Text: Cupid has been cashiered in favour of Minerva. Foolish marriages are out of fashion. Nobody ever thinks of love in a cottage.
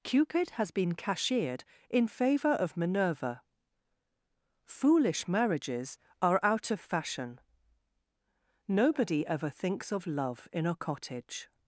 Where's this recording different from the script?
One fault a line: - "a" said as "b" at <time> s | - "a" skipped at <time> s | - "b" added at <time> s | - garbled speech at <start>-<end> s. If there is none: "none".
none